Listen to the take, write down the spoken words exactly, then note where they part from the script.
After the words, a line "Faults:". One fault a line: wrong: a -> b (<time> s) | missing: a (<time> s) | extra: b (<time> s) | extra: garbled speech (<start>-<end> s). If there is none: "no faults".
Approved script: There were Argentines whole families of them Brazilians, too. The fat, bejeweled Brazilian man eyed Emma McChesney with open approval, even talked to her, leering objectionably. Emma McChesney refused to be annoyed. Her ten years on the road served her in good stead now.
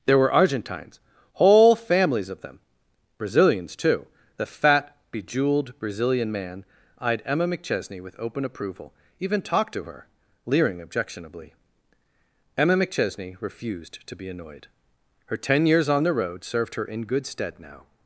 There were Argentines whole families of them Brazilians, too. The fat, bejeweled Brazilian man eyed Emma McChesney with open approval, even talked to her, leering objectionably. Emma McChesney refused to be annoyed. Her ten years on the road served her in good stead now.
Faults:
no faults